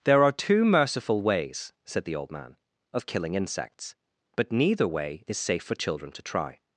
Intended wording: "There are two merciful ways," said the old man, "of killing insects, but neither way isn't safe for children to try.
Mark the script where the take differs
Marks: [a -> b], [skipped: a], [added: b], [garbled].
"There are two merciful ways," said the old man, "of killing insects, but neither way [isn't -> is] safe for children to try.